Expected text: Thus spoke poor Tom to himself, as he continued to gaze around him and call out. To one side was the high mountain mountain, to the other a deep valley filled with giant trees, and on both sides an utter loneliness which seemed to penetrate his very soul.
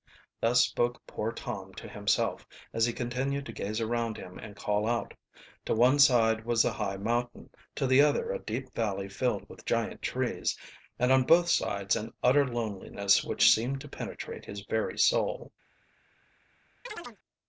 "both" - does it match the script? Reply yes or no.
yes